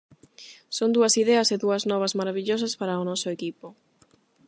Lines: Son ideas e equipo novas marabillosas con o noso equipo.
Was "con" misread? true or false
true